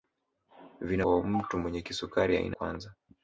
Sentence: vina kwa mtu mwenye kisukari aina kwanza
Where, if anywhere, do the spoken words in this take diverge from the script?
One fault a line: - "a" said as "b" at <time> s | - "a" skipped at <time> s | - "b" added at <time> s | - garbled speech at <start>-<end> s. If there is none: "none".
none